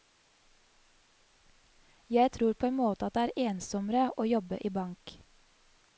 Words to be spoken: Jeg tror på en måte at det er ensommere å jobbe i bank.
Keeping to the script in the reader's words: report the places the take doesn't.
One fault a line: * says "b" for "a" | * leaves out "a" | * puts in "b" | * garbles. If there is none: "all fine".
all fine